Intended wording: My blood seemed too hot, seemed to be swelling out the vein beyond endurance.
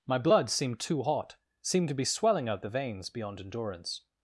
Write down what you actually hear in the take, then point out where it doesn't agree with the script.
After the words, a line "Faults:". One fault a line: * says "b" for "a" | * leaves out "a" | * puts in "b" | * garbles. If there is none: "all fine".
My blood seemed too hot, seemed to be swelling out the veins beyond endurance.
Faults:
* says "veins" for "vein"